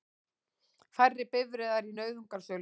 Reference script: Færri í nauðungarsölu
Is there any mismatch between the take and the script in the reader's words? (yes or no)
yes